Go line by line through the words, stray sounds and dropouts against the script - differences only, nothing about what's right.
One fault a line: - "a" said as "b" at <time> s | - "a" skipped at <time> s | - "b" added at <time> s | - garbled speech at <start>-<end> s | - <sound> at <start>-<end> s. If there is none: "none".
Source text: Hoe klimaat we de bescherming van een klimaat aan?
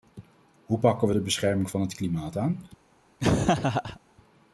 - "klimaat" said as "pakken" at 0.8 s
- "een" said as "het" at 1.8 s
- laugh at 3.2-4.0 s